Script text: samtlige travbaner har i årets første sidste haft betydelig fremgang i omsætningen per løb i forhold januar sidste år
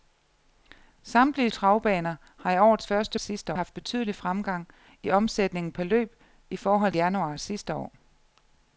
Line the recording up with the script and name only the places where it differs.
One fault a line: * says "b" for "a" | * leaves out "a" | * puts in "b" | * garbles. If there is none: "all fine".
all fine